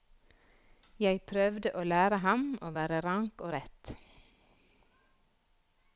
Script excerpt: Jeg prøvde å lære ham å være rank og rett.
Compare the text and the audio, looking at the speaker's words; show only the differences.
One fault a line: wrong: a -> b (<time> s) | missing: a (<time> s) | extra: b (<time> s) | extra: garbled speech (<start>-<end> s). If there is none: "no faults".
no faults